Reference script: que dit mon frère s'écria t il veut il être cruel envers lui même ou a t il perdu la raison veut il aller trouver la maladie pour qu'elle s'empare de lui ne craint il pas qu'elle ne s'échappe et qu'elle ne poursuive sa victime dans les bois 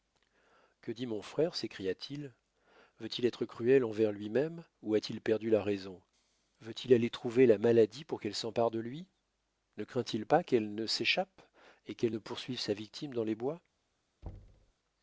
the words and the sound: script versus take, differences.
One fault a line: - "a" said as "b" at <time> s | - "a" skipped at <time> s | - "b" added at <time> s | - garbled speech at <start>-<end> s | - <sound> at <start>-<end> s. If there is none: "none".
- thud at 14.2-14.7 s